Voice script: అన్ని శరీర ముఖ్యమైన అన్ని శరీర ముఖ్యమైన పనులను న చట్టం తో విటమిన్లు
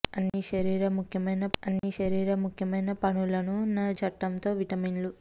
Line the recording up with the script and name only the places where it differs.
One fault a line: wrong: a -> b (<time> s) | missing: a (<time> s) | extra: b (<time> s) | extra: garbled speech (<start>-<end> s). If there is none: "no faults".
no faults